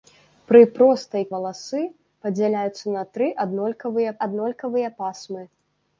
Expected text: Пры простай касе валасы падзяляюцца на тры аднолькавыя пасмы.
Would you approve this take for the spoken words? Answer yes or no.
no